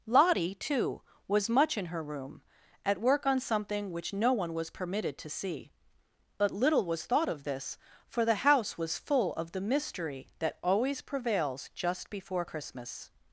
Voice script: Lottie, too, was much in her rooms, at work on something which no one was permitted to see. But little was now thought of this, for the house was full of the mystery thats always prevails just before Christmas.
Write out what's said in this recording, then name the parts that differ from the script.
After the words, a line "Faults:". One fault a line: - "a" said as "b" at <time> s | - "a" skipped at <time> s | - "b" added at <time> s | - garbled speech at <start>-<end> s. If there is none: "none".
Lottie, too, was much in her room, at work on something which no one was permitted to see. But little was thought of this, for the house was full of the mystery that always prevails just before Christmas.
Faults:
- "rooms" said as "room" at 2.0 s
- "now" skipped at 7.0 s
- "thats" said as "that" at 10.4 s